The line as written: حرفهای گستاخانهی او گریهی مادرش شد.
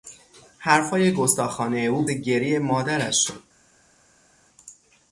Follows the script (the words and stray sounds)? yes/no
yes